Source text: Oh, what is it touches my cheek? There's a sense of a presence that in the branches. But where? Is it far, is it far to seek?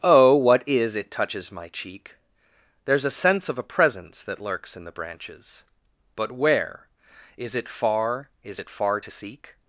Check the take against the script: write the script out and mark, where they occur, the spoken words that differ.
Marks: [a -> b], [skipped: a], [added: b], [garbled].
Oh, what is it touches my cheek? There's a sense of a presence that [added: lurks] in the branches. But where? Is it far, is it far to seek?